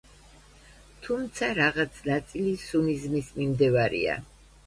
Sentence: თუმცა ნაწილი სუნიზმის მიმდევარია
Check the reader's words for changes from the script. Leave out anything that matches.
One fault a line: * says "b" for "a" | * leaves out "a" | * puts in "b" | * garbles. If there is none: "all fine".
* puts in "რაღაც"